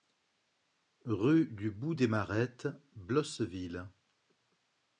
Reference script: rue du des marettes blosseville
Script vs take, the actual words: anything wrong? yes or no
yes